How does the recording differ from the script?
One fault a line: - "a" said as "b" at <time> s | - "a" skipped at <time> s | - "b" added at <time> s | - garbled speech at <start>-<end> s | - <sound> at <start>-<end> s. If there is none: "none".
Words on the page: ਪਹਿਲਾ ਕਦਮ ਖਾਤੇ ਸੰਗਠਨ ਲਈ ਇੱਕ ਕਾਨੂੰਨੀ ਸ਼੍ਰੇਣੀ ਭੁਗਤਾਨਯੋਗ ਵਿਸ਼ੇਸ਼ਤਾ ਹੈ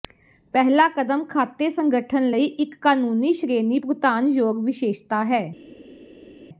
none